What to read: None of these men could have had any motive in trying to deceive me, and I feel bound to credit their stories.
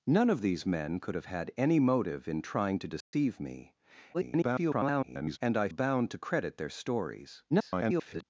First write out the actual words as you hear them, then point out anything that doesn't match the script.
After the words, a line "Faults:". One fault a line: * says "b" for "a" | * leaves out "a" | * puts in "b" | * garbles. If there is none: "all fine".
None of these men could have had any motive in trying to deceive me, [garbled] and I bound to credit their stories. [garbled]
Faults:
* garbles
* leaves out "feel"
* garbles